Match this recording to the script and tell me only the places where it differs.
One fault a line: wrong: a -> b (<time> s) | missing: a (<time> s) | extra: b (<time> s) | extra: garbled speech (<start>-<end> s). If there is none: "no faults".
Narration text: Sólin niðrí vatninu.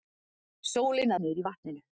no faults